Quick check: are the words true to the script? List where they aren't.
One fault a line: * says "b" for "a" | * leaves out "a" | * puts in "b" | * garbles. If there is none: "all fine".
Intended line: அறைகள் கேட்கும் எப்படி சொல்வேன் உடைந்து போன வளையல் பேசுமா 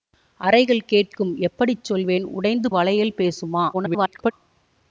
* leaves out "போன"
* garbles